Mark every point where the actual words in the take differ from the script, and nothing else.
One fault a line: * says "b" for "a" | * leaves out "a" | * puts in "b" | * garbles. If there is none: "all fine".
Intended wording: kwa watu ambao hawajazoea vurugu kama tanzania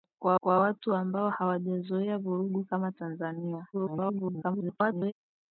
* puts in "kwa"
* garbles